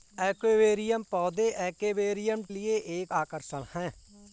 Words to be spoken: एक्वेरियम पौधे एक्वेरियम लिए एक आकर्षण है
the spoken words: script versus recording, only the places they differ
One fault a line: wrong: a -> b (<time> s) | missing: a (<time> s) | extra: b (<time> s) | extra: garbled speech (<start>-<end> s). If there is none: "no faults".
no faults